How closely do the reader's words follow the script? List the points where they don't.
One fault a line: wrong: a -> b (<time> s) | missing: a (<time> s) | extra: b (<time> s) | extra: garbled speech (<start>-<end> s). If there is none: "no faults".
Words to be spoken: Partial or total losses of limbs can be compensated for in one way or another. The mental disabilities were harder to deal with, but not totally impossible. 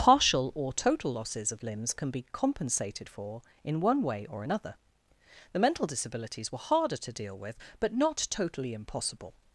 no faults